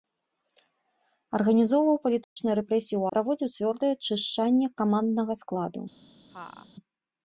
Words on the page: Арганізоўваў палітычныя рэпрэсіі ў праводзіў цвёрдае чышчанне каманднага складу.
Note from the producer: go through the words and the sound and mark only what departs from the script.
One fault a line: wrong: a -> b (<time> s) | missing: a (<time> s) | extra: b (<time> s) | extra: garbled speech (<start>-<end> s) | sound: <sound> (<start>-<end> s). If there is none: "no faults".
sound: dropout (2.2-2.4 s)
sound: laugh (6.3-6.7 s)